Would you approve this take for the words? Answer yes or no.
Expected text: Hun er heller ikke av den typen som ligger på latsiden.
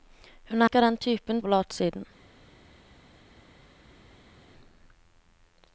no